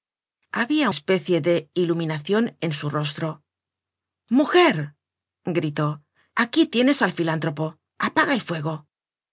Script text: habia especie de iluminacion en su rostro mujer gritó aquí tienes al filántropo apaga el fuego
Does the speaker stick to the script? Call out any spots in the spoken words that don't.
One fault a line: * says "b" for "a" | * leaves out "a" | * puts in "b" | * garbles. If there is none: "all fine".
all fine